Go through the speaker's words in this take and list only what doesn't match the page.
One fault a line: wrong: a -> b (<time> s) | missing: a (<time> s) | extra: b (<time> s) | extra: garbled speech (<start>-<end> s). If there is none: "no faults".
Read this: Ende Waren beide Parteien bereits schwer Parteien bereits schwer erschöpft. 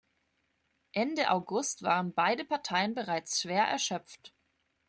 extra: August (1.3 s)
missing: Parteien bereits schwer (3.6 s)